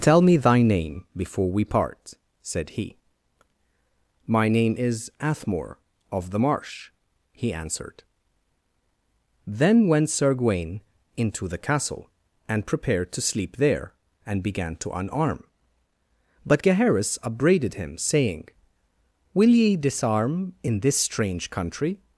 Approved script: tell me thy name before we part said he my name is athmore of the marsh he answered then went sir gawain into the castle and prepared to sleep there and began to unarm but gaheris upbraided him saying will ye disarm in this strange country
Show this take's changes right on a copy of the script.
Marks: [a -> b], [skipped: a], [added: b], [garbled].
tell me thy name before we part said he my name is athmore of the marsh he answered then went sir gawain into the castle and prepared to sleep there and began to unarm but gaheris upbraided him saying will ye disarm in this strange country